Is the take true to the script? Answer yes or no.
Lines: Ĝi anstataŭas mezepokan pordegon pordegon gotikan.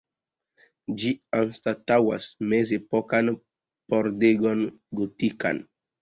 no